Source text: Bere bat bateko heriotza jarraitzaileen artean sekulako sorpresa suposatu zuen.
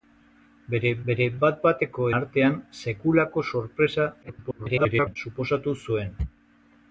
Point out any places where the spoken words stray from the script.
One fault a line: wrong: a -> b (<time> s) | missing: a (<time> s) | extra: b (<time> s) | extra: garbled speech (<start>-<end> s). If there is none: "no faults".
extra: bere (1.1 s)
missing: heriotza jarraitzaileen (2.1 s)
extra: garbled speech (4.2-5.2 s)